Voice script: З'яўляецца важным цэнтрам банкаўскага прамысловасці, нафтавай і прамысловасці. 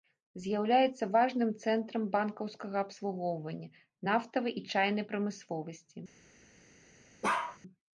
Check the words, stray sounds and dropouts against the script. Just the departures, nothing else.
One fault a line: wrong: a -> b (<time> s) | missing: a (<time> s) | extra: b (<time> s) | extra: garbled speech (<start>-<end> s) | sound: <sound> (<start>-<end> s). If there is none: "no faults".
wrong: прамысловасці -> абслугоўвання (2.9 s)
extra: чайнай (4.8 s)
sound: bark (7.2-7.6 s)